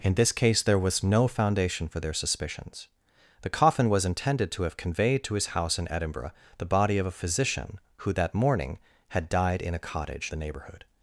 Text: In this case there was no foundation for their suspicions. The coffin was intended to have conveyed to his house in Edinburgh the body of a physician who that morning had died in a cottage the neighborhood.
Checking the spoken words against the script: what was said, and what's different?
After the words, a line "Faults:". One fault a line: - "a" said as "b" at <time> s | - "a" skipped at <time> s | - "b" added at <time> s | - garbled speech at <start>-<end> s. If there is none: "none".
In this case there was no foundation for their suspicions. The coffin was intended to have conveyed to his house in Edinburgh the body of a physician who that morning had died in a cottage the neighborhood.
Faults:
none